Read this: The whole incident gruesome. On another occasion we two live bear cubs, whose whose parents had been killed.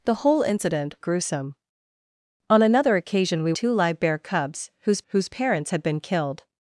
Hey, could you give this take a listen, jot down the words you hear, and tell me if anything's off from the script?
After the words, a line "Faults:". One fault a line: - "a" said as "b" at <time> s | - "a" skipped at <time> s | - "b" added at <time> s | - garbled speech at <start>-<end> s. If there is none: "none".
The whole incident gruesome. On another occasion we two live bear cubs, whose whose parents had been killed.
Faults:
none